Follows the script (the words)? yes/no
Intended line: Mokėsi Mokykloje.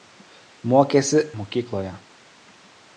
yes